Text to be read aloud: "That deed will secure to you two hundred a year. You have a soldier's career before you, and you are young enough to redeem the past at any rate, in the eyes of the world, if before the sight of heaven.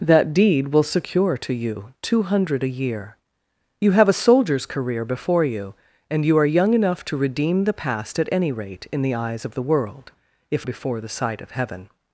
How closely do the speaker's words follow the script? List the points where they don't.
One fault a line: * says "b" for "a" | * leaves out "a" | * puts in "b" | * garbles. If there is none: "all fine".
all fine